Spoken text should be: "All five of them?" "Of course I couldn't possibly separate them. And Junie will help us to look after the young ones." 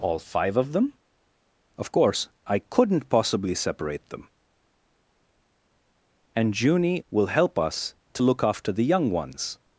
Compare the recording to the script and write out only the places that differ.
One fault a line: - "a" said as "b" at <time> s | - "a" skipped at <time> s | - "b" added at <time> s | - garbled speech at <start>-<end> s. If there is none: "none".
none